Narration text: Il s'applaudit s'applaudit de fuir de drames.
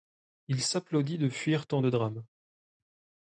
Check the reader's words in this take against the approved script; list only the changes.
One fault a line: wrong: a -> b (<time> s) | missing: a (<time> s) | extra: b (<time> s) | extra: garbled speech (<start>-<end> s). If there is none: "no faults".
missing: s'applaudit (1.2 s)
extra: tant (1.7 s)